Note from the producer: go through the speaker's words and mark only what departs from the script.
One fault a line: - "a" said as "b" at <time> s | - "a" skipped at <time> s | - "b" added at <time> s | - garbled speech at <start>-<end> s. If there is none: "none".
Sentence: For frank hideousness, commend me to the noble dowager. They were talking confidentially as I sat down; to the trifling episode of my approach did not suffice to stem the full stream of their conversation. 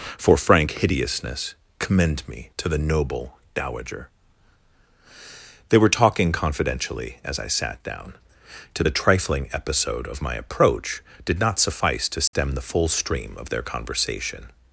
none